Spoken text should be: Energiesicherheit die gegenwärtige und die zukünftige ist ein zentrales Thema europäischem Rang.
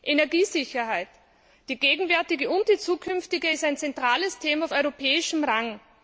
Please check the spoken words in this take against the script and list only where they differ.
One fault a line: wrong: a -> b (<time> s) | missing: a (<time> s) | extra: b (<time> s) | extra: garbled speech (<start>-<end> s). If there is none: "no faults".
no faults